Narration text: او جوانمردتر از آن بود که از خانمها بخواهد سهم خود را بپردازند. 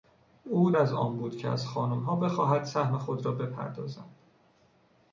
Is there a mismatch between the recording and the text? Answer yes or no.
yes